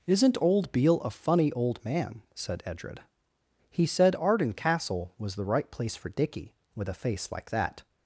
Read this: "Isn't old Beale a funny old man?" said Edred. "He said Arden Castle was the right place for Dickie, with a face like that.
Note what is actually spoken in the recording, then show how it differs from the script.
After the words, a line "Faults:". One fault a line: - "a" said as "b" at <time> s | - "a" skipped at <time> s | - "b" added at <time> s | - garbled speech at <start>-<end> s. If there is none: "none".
"Isn't old Beale a funny old man?" said Edred. "He said Arden Castle was the right place for Dickie, with a face like that.
Faults:
none